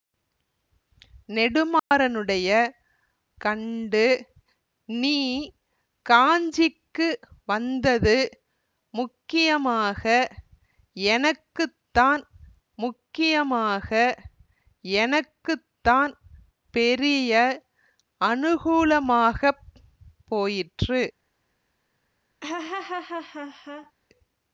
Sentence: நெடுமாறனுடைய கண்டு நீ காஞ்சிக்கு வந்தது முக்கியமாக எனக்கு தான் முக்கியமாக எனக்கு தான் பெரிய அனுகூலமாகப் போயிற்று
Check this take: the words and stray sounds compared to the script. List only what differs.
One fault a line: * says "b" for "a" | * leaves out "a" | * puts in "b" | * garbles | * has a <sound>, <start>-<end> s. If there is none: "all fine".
* has a dropout, 1.8-1.9 s
* has a laugh, 22.4-23.9 s